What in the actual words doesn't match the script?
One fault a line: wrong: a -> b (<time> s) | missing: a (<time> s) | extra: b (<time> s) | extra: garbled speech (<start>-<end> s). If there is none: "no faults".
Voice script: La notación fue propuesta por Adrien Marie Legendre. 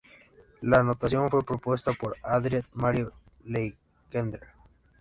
no faults